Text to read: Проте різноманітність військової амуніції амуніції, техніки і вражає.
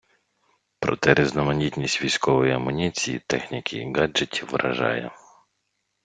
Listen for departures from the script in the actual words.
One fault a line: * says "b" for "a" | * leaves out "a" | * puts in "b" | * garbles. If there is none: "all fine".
* leaves out "амуніції"
* puts in "гаджетів"